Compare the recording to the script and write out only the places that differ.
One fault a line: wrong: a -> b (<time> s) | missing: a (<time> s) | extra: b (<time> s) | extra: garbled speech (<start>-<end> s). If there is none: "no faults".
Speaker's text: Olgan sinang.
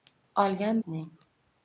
no faults